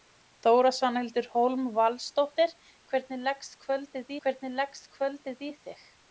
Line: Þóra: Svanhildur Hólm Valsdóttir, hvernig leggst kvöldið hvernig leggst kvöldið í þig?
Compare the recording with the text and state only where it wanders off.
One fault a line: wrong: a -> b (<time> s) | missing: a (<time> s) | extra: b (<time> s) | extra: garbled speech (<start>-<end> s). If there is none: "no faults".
no faults